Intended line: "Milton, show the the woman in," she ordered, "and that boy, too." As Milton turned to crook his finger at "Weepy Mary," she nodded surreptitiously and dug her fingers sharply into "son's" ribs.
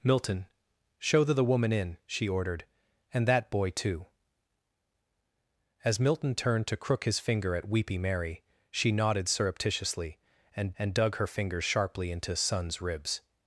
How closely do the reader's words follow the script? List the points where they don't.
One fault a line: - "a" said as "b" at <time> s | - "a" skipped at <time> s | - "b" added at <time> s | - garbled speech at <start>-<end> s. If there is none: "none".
- "and" added at 10.8 s